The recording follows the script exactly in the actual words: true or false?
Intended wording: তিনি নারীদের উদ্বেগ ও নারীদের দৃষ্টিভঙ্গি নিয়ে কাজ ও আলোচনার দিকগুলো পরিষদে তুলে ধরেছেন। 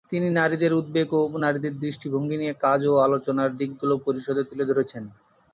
true